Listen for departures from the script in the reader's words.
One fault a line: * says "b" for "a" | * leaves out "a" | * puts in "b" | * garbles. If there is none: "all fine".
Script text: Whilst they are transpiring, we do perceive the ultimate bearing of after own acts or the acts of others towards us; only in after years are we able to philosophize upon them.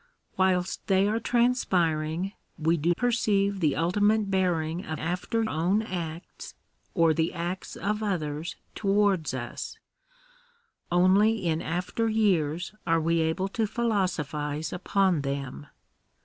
all fine